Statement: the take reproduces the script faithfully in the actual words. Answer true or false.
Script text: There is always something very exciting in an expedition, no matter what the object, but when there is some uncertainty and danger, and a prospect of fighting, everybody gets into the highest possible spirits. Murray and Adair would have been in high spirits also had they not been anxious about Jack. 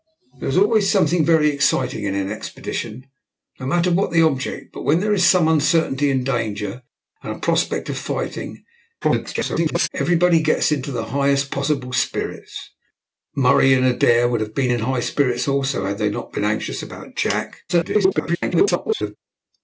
false